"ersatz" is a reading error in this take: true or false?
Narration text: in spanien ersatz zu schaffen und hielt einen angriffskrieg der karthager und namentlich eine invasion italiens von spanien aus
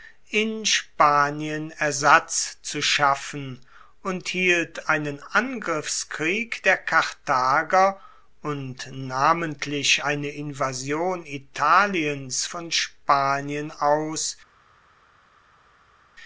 false